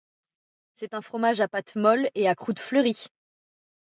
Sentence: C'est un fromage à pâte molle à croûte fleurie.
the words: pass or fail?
fail